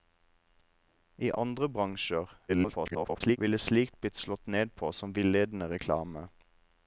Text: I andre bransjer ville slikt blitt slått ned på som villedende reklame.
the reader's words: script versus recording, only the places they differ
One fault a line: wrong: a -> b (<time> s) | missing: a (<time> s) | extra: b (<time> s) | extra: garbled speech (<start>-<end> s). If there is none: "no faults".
extra: garbled speech (2.5-3.4 s)